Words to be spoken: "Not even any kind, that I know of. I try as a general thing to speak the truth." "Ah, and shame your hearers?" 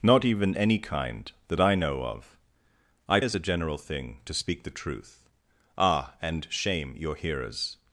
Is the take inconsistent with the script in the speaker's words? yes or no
yes